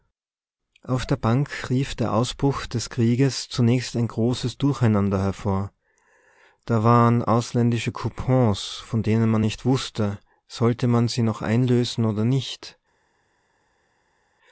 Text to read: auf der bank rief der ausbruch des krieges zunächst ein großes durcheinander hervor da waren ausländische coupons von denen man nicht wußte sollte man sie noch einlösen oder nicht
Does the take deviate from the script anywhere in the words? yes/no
no